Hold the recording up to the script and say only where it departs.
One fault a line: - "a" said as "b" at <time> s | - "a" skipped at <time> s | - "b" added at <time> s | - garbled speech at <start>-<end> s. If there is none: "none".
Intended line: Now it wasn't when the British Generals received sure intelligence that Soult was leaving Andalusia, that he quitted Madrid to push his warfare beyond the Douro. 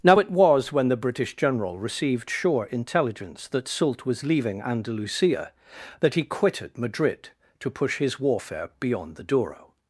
- "wasn't" said as "was" at 0.3 s
- "Generals" said as "General" at 1.4 s